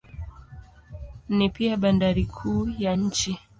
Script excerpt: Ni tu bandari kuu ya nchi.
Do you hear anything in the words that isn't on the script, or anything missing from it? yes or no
yes